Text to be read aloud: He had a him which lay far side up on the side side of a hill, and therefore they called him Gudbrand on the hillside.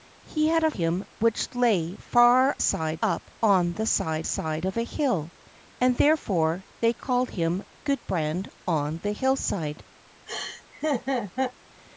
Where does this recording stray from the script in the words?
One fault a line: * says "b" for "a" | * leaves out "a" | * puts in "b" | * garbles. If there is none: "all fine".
all fine